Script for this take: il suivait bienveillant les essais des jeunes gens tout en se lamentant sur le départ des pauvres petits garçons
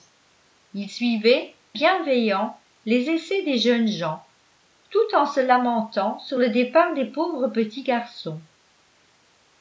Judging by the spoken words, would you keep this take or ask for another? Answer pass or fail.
pass